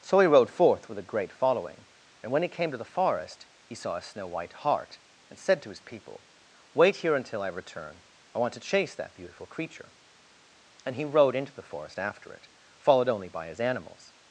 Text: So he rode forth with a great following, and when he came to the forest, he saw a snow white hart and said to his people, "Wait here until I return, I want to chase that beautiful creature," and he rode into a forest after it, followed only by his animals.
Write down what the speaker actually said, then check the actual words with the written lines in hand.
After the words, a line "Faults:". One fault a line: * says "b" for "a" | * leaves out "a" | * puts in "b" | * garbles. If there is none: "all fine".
So he rode forth with a great following, and when he came to the forest, he saw a snow white hart and said to his people, "Wait here until I return, I want to chase that beautiful creature," and he rode into the forest after it, followed only by his animals.
Faults:
* says "the" for "a"